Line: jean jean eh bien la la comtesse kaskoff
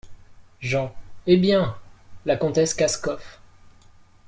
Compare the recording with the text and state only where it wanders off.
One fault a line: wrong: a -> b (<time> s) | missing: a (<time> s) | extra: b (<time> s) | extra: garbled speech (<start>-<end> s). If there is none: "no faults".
missing: jean (0.9 s)
missing: la (2.4 s)